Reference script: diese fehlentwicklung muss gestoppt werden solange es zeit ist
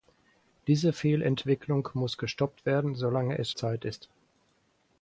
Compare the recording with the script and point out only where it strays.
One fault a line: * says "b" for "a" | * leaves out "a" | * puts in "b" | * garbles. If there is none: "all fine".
all fine